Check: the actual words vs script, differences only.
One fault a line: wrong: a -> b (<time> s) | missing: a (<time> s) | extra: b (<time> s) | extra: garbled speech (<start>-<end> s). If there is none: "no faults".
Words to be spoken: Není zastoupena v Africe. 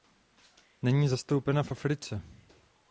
no faults